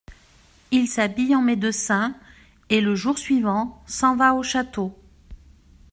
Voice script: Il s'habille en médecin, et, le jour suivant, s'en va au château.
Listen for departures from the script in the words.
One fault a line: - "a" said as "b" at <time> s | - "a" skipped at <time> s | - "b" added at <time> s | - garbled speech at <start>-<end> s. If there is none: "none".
none